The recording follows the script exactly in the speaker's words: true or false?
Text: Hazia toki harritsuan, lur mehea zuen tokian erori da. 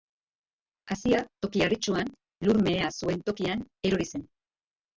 false